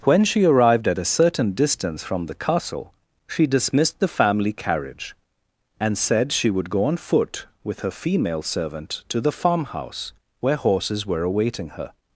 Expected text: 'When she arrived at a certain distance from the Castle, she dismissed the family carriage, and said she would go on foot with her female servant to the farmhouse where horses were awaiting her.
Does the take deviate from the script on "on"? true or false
false